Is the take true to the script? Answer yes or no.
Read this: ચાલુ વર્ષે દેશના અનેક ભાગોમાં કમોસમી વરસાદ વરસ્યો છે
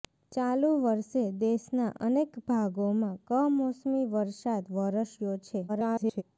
no